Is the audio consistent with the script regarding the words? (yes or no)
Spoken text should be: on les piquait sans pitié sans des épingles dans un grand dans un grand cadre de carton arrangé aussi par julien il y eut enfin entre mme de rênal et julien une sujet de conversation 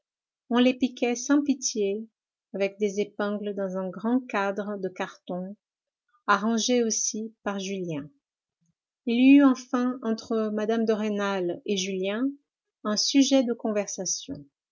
no